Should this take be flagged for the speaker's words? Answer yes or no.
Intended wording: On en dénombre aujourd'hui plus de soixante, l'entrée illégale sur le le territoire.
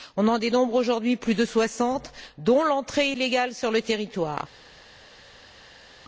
yes